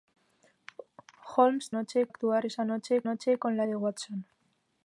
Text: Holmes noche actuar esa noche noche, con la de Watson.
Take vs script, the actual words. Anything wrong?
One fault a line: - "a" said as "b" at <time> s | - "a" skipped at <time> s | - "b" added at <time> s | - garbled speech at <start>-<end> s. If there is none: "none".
none